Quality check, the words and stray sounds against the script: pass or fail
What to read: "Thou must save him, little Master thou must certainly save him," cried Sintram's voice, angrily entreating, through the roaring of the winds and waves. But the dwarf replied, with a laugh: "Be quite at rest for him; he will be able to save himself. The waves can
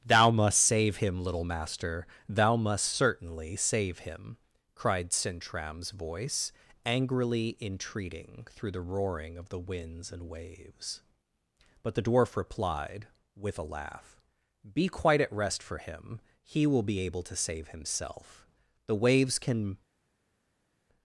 pass